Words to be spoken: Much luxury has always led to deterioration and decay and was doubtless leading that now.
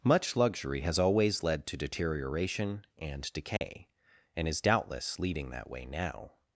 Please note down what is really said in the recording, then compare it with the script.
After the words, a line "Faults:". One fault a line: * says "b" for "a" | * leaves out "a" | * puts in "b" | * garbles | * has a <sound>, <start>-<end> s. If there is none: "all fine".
Much luxury has always led to deterioration and decay and is doubtless leading that way now.
Faults:
* has a dropout, 3.6-3.6 s
* says "is" for "was"
* puts in "way"